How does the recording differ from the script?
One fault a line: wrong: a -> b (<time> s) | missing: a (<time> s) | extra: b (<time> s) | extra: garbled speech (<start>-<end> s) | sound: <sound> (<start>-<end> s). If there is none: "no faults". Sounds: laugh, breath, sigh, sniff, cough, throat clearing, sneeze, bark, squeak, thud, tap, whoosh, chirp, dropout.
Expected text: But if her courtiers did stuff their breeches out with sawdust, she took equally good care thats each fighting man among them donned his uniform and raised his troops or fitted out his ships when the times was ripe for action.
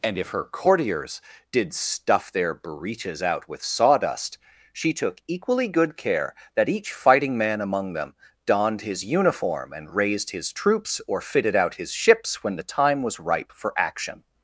wrong: But -> And (0.0 s)
wrong: thats -> that (6.5 s)
wrong: times -> time (12.6 s)